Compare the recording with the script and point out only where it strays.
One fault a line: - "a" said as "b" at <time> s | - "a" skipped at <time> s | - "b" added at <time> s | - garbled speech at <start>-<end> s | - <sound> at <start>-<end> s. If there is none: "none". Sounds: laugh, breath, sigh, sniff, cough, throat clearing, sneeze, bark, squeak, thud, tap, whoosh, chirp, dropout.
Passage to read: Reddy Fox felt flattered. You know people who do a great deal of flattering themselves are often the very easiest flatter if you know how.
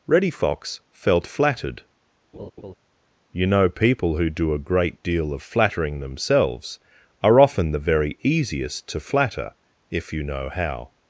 - laugh at 2.3-2.7 s
- "to" added at 8.9 s